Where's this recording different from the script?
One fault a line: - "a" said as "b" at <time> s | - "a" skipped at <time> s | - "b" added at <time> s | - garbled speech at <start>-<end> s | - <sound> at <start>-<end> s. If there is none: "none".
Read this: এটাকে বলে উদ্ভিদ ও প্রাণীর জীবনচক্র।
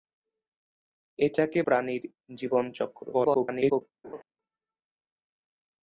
- "বলে উদ্ভিদ ও" skipped at 1.6 s
- garbled speech at 3.1-3.8 s
- laugh at 4.0-4.2 s